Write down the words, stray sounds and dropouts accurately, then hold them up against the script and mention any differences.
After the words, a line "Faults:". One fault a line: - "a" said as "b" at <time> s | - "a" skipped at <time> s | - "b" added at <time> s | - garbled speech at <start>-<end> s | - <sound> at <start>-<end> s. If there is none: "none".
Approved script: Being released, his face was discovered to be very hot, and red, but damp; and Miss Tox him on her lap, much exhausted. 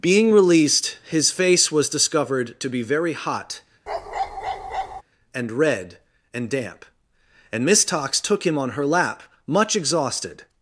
Being released, his face was discovered to be very hot, and red, and damp; and Miss Tox took him on her lap, much exhausted.
Faults:
- bark at 3.9-5.0 s
- "but" said as "and" at 6.3 s
- "took" added at 8.2 s